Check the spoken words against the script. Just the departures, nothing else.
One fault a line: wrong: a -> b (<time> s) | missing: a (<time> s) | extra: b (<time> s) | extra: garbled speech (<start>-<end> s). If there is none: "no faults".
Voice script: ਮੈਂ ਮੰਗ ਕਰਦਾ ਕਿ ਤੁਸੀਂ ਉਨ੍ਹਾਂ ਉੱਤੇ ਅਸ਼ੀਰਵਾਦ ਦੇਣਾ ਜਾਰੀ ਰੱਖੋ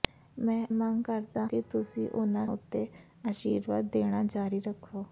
no faults